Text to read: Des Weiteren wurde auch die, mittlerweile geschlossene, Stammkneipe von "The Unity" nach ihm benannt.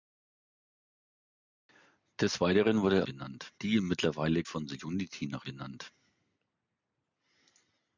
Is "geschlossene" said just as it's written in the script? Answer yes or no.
no